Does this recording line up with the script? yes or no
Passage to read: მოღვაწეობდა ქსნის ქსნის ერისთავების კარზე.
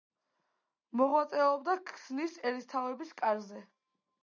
no